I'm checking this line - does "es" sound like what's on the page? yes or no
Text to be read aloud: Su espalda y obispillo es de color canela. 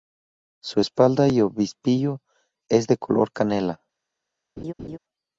yes